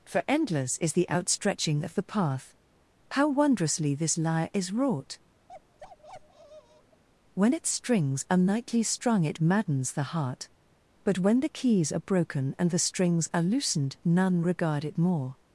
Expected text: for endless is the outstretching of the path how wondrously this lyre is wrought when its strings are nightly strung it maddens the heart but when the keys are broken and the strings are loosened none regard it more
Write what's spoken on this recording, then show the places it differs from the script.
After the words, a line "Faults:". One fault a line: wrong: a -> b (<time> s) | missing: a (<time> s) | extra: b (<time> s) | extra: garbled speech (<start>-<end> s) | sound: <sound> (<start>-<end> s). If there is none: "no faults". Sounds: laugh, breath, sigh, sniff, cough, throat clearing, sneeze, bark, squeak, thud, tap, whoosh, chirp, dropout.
for endless is the outstretching of the path how wondrously this lyre is wrought when its strings are nightly strung it maddens the heart but when the keys are broken and the strings are loosened none regard it more
Faults:
sound: bark (5.5-7.0 s)